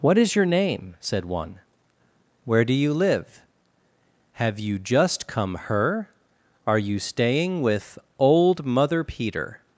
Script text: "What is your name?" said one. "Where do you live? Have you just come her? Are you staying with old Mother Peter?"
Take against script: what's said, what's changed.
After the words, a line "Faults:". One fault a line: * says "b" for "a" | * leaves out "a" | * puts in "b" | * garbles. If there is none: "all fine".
"What is your name?" said one. "Where do you live? Have you just come her? Are you staying with old Mother Peter?"
Faults:
all fine